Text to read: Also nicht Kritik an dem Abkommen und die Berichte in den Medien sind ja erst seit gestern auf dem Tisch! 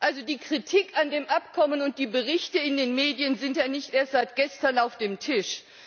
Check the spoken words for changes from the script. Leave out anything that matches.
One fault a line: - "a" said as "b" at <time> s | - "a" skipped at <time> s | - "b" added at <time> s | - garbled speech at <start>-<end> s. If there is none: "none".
- "nicht" said as "die" at 0.2 s
- "nicht" added at 3.7 s